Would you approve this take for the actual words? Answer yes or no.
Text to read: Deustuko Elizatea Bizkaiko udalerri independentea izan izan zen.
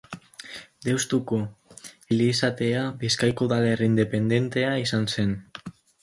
no